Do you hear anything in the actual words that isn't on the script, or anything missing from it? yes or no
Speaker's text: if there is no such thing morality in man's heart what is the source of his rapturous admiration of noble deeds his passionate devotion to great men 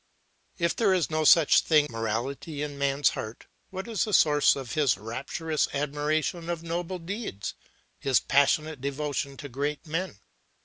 no